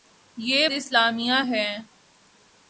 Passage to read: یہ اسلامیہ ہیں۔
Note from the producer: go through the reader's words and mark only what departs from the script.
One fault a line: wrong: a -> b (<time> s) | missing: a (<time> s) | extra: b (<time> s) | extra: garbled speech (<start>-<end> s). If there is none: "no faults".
no faults